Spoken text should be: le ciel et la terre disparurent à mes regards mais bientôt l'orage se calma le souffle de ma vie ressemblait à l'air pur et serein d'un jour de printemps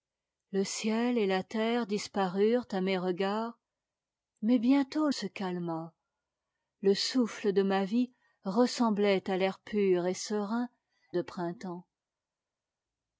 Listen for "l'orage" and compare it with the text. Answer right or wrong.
wrong